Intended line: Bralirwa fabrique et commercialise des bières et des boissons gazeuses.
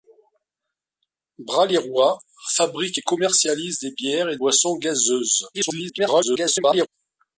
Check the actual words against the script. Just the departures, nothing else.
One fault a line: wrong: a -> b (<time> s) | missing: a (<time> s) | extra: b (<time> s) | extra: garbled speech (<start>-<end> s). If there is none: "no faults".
missing: des (4.4 s)
extra: garbled speech (5.5-6.9 s)